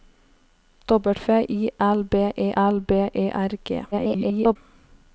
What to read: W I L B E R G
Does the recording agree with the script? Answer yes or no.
no